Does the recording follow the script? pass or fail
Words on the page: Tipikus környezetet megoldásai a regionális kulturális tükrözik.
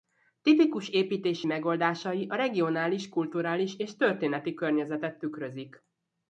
fail